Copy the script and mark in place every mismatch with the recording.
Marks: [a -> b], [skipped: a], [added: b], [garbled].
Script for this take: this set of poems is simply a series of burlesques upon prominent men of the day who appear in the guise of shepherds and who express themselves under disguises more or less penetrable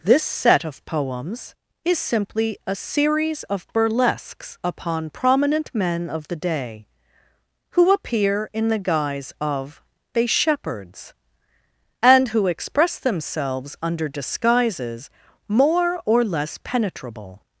this set of poems is simply a series of burlesques upon prominent men of the day who appear in the guise of [added: they] shepherds and who express themselves under disguises more or less penetrable